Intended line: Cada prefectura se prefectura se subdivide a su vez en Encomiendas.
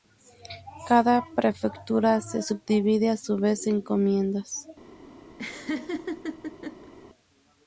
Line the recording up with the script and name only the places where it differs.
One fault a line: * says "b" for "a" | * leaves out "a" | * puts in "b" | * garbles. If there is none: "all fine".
* leaves out "prefectura se"